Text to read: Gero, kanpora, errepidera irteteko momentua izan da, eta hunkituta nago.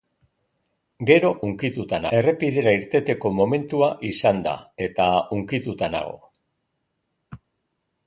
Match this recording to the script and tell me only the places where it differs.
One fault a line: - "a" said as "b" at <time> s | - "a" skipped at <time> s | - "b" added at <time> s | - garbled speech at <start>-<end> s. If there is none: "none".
- "kanpora" said as "hunkituta" at 1.5 s